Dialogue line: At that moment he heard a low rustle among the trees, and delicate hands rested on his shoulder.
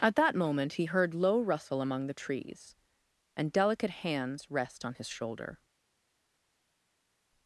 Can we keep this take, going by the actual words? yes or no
no